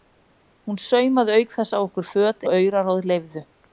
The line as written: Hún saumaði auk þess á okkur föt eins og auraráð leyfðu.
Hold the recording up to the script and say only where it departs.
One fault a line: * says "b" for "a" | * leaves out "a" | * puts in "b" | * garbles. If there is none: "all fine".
* leaves out "eins"